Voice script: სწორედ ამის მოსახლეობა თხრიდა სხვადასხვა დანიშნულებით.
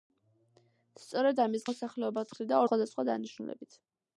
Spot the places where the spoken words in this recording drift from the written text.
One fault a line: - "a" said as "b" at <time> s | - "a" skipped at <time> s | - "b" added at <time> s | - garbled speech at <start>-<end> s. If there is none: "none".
none